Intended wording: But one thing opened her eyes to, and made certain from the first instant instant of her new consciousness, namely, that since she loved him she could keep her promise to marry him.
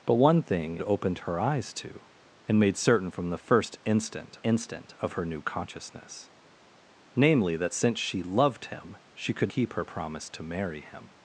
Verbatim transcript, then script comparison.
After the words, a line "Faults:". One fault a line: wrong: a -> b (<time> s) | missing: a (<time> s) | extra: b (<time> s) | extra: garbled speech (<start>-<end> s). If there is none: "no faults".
But one thing opened her eyes to, and made certain from the first instant instant of her new consciousness, namely, that since she loved him she could keep her promise to marry him.
Faults:
no faults